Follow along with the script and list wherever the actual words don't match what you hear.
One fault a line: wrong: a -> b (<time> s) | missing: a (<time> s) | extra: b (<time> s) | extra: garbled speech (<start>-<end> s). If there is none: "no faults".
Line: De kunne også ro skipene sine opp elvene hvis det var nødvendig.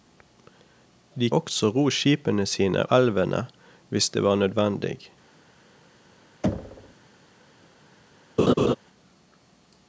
missing: kunne (1.3 s)
missing: opp (2.8 s)